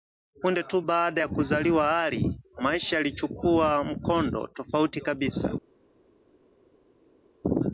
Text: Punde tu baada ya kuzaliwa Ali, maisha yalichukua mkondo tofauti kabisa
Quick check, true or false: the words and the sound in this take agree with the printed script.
true